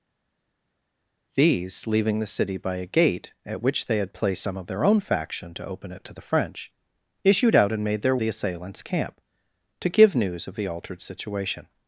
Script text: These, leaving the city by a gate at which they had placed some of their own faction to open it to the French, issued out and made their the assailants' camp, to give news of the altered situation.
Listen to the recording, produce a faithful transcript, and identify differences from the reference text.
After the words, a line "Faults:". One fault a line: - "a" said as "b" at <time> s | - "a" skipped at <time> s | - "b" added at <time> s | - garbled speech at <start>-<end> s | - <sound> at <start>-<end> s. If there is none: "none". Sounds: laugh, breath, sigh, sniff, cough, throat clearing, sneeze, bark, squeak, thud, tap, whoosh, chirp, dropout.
These, leaving the city by a gate at which they had placed some of their own faction to open it to the French, issued out and made their the assailants' camp, to give news of the altered situation.
Faults:
none